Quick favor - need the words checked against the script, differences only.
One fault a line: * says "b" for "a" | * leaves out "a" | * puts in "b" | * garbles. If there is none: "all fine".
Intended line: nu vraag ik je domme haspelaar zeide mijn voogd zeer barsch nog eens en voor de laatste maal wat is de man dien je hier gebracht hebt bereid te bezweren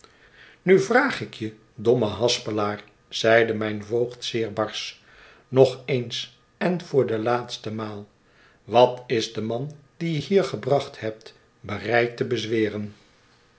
all fine